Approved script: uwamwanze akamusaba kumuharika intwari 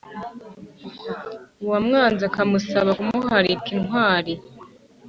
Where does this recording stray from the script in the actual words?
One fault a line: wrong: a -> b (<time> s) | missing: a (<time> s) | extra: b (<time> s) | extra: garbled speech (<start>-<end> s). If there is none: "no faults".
no faults